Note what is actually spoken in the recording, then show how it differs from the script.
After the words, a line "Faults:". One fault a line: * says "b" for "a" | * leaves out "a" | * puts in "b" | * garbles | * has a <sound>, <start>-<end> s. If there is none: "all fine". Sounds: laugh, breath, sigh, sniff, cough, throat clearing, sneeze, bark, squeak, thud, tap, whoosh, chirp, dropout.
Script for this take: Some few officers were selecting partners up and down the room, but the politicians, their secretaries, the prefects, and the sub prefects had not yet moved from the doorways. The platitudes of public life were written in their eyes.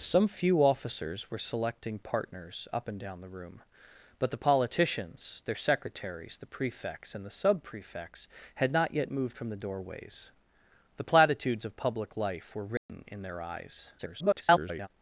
Some few officers were selecting partners up and down the room, but the politicians, their secretaries, the prefects, and the sub prefects had not yet moved from the doorways. The platitudes of public life were written in their eyes. [garbled]
Faults:
* has a dropout, 12.8-12.9 s
* garbles